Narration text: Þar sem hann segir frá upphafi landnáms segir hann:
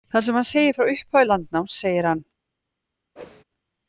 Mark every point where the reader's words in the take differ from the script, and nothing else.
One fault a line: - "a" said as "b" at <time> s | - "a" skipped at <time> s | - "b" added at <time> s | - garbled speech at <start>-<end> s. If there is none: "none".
none